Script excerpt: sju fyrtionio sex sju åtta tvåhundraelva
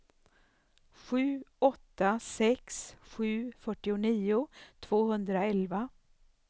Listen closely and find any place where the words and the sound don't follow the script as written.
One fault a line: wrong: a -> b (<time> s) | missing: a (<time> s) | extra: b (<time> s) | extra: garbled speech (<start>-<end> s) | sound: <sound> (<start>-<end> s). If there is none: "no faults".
wrong: fyrtionio -> åtta (1.6 s)
wrong: åtta -> fyrtionio (3.6 s)